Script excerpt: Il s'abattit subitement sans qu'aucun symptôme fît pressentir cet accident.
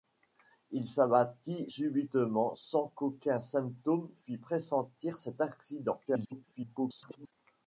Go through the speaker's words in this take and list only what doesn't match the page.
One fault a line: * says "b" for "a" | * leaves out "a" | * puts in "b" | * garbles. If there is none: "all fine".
* garbles